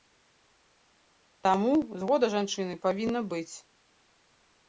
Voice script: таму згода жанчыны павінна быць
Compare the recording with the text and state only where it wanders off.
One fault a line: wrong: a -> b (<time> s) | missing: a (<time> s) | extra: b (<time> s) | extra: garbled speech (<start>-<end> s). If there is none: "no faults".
no faults